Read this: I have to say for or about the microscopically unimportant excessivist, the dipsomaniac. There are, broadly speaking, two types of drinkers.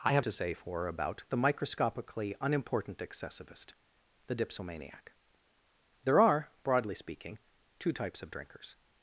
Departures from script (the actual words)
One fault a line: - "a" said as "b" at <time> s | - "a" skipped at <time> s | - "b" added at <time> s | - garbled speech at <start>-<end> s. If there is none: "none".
none